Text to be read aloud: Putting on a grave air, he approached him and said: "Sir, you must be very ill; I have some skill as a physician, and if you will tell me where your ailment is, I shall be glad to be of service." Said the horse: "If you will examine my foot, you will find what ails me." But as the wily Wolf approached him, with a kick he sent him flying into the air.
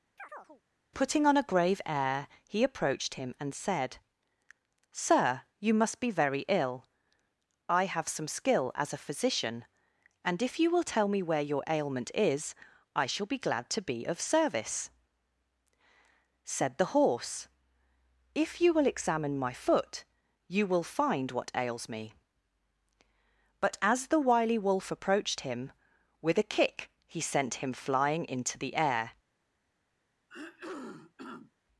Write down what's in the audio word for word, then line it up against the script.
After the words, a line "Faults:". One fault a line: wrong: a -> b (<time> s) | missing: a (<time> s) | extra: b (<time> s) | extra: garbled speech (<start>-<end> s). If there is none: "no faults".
Putting on a grave air, he approached him and said: "Sir, you must be very ill; I have some skill as a physician, and if you will tell me where your ailment is, I shall be glad to be of service." Said the horse: "If you will examine my foot, you will find what ails me." But as the wily Wolf approached him, with a kick he sent him flying into the air.
Faults:
no faults